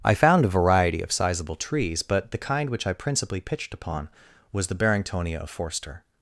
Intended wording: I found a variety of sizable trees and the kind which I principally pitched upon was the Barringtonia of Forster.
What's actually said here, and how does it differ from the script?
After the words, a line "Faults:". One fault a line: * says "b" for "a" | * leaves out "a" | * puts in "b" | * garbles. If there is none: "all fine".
I found a variety of sizable trees but the kind which I principally pitched upon was the Barringtonia of Forster.
Faults:
* says "but" for "and"